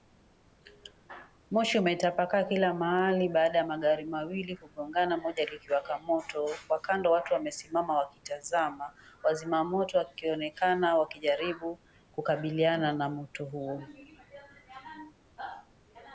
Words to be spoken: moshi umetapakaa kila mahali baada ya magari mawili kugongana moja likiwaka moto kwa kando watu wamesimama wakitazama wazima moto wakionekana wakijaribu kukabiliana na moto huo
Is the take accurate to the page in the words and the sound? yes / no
yes